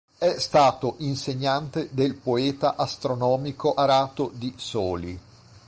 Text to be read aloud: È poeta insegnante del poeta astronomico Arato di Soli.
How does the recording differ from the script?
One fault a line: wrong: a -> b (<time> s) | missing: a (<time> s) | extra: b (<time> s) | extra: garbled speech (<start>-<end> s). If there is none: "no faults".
wrong: poeta -> stato (0.4 s)